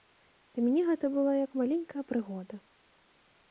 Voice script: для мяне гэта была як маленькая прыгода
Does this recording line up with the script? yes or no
yes